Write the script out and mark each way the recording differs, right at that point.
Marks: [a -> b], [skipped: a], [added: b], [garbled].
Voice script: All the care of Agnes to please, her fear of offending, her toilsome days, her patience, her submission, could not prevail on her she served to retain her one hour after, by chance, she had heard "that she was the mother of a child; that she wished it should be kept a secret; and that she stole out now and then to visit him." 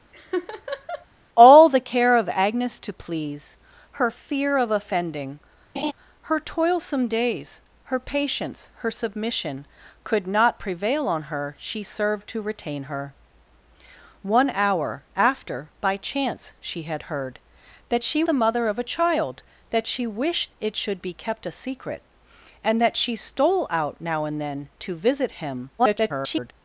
All the care of Agnes to please, her fear of offending, her toilsome days, her patience, her submission, could not prevail on her she served to retain her one hour after, by chance, she had heard "that she [skipped: was] the mother of a child; that she wished it should be kept a secret; and that she stole out now and then to visit him." [garbled]